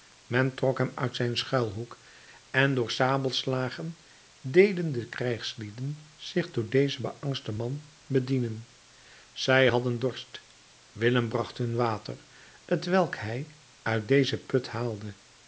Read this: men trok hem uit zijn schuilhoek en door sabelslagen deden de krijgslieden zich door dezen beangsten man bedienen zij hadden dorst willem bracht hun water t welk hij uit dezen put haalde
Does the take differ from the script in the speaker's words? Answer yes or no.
no